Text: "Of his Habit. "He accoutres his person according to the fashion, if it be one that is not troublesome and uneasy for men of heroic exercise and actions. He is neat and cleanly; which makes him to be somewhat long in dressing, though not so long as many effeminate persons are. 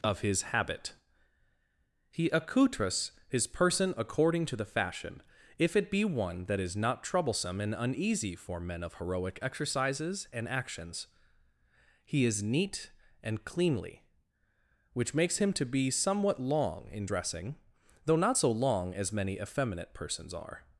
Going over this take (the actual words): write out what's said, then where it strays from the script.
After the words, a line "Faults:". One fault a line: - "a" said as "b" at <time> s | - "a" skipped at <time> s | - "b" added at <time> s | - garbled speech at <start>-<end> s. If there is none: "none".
"Of his Habit. "He accoutres his person according to the fashion, if it be one that is not troublesome and uneasy for men of heroic exercises and actions. He is neat and cleanly; which makes him to be somewhat long in dressing, though not so long as many effeminate persons are.
Faults:
- "exercise" said as "exercises" at 9.4 s